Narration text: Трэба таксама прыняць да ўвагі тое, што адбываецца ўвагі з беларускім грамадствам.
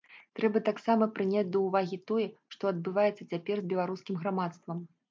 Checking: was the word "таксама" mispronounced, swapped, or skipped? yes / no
no